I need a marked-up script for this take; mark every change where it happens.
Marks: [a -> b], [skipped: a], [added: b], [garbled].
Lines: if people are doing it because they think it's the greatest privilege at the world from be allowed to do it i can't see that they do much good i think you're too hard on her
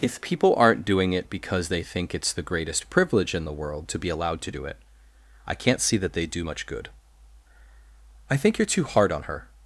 if people [are -> aren't] doing it because they think it's the greatest privilege [at -> in] the world [from -> to] be allowed to do it i can't see that they do much good i think you're too hard on her